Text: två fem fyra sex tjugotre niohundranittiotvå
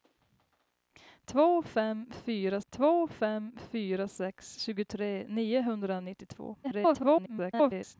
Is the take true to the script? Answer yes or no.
no